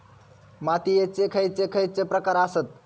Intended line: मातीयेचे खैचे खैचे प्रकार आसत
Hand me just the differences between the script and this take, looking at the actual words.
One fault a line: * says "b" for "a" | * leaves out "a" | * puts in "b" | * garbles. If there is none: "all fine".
all fine